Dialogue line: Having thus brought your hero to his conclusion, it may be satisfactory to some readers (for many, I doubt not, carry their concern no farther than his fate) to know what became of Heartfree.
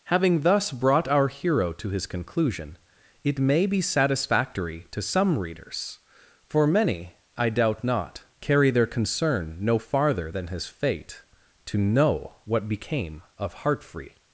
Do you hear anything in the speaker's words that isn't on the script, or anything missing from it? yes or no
yes